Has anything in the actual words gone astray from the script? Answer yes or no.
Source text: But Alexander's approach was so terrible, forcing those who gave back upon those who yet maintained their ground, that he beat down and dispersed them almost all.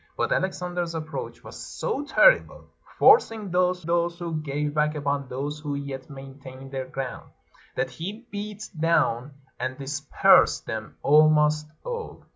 yes